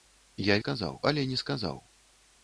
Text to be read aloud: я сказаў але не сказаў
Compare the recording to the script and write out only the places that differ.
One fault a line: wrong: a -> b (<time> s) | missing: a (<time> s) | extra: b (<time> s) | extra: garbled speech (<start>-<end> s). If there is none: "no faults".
no faults